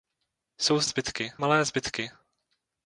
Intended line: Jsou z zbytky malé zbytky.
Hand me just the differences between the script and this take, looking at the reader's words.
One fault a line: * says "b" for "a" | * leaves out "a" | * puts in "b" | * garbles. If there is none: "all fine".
all fine